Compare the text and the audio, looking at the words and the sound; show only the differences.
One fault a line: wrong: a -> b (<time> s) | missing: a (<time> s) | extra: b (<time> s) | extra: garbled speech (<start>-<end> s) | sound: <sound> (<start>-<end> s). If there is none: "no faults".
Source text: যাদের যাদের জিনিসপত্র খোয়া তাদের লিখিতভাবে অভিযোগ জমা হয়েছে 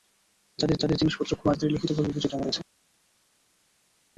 no faults